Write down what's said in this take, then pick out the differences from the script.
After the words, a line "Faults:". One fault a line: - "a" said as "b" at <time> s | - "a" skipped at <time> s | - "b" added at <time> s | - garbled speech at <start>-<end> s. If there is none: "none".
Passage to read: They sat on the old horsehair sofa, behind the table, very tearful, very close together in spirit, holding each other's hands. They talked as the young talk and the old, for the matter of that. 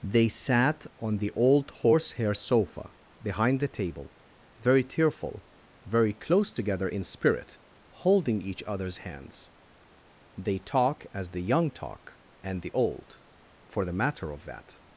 They sat on the old horsehair sofa, behind the table, very tearful, very close together in spirit, holding each other's hands. They talk as the young talk and the old, for the matter of that.
Faults:
- "talked" said as "talk" at 10.6 s